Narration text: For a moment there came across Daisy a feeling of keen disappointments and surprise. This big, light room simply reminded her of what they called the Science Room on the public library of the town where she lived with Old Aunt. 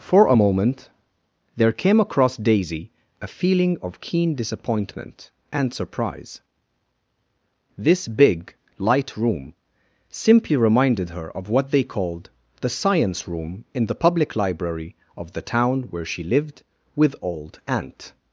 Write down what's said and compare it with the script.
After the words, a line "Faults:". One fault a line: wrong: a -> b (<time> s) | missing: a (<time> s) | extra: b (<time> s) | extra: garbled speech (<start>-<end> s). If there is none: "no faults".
For a moment there came across Daisy a feeling of keen disappointment and surprise. This big, light room simply reminded her of what they called the Science Room in the public library of the town where she lived with Old Aunt.
Faults:
wrong: disappointments -> disappointment (4.3 s)
wrong: on -> in (13.7 s)